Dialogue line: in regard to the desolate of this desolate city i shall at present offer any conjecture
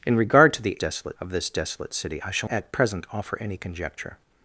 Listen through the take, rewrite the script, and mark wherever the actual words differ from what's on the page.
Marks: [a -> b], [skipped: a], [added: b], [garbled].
in regard to the desolate of this desolate city i shall at present offer any conjecture